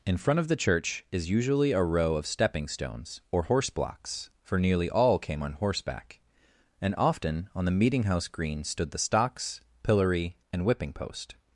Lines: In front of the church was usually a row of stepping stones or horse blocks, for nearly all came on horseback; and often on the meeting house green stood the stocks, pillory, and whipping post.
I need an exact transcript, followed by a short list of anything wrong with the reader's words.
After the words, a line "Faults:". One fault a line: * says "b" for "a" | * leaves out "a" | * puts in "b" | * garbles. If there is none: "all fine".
In front of the church is usually a row of stepping stones or horse blocks, for nearly all came on horseback; and often on the meeting house green stood the stocks, pillory, and whipping post.
Faults:
* says "is" for "was"